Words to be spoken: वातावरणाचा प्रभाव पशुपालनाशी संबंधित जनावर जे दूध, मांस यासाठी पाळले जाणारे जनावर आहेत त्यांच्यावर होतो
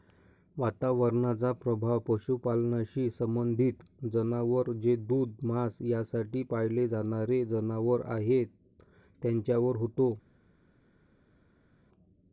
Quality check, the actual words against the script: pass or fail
pass